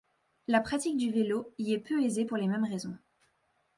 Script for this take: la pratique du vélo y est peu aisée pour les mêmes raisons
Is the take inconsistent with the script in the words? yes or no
no